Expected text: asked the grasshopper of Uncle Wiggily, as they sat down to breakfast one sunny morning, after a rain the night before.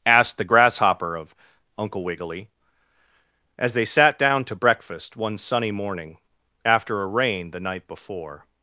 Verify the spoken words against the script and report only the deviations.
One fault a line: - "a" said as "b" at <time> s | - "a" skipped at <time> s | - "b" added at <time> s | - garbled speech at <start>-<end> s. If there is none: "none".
none